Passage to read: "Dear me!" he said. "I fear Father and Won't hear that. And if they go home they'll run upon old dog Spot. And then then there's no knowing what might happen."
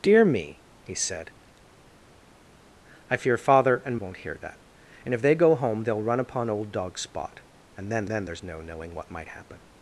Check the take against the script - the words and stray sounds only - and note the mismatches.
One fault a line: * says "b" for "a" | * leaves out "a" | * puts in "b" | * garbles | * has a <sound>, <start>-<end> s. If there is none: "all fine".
all fine